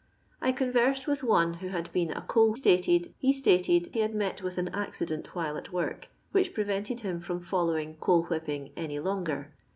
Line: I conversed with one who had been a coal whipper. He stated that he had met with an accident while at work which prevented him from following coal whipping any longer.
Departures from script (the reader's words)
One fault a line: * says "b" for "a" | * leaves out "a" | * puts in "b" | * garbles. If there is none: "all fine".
* says "stated" for "whipper"
* leaves out "that"